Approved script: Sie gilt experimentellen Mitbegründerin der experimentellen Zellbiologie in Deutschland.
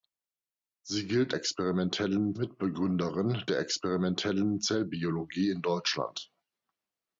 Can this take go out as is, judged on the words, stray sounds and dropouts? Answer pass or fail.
pass